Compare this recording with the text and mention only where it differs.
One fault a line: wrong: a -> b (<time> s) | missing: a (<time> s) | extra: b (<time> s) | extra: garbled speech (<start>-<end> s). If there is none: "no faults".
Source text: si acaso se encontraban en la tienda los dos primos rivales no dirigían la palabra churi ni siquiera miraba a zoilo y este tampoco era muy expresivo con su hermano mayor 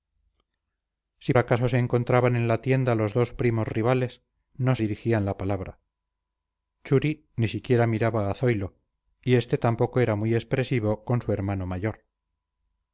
no faults